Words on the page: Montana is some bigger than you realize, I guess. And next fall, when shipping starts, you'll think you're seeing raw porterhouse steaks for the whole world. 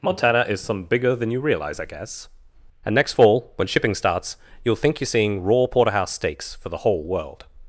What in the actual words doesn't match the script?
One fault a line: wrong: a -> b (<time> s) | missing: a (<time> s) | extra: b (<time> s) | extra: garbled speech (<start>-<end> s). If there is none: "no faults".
no faults